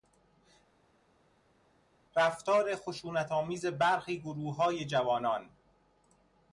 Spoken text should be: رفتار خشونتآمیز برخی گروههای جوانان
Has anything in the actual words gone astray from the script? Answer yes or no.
no